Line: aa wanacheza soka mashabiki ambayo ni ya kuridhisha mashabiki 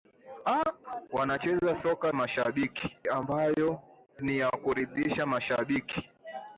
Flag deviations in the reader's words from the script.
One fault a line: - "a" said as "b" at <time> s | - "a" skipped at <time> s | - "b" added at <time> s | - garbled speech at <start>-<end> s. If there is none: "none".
none